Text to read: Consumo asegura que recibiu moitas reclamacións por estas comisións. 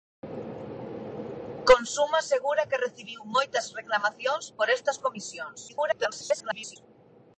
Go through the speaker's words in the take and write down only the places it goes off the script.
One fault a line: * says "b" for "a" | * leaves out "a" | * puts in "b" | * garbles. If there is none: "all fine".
* garbles